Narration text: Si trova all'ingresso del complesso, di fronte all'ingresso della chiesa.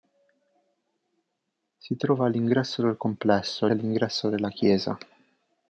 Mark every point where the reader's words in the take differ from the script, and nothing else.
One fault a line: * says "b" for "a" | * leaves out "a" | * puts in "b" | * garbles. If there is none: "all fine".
* leaves out "di fronte"